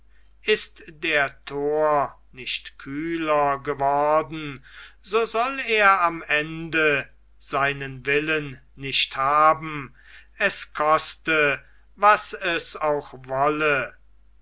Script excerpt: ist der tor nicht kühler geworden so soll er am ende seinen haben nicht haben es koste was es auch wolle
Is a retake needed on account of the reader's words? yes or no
yes